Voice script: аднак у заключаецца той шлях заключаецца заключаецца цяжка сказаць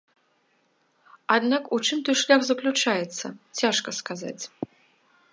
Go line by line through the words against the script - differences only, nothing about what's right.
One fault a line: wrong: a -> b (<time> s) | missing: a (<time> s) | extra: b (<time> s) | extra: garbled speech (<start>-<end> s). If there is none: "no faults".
wrong: заключаецца -> чым (1.9 s)
missing: заключаецца (3.2 s)